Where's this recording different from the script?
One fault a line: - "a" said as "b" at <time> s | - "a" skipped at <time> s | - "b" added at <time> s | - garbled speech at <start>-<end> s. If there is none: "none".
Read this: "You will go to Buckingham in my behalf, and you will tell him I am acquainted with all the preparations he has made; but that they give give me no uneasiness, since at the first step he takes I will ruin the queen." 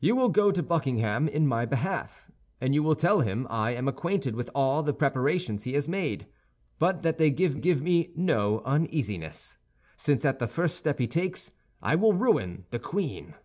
none